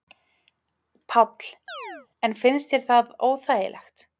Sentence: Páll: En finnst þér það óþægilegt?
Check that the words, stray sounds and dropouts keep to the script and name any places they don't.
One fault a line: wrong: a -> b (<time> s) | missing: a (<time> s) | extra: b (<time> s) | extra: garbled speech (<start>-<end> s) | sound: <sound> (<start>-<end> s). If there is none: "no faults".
sound: chirp (1.7-2.1 s)